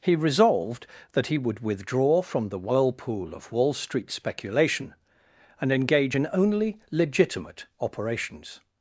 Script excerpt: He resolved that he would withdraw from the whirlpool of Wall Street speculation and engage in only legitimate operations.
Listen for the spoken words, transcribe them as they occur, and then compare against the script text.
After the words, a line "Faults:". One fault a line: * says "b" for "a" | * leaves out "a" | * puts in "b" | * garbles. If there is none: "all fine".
He resolved that he would withdraw from the whirlpool of Wall Street speculation and engage in only legitimate operations.
Faults:
all fine